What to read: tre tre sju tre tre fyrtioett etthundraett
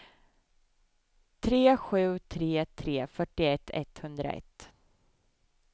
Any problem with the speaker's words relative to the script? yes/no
yes